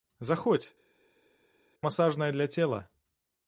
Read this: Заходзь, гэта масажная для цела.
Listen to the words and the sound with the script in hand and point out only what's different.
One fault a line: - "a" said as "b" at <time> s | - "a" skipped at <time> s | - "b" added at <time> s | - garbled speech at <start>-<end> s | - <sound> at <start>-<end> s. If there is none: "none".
- "гэта" skipped at 0.7 s